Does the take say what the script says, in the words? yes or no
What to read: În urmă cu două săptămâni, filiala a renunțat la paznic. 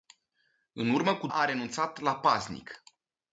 no